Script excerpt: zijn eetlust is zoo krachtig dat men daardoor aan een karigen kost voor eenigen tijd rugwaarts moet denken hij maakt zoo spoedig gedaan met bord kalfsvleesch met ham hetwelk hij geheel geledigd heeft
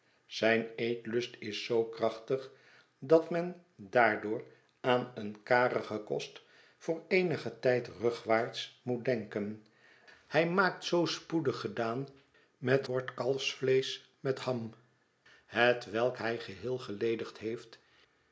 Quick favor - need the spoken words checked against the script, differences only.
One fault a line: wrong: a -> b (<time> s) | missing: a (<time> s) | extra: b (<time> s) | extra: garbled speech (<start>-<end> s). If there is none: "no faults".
no faults